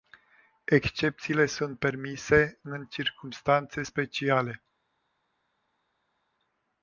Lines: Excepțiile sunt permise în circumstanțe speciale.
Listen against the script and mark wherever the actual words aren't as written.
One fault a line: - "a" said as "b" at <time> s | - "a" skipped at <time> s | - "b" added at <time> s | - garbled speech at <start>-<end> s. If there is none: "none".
none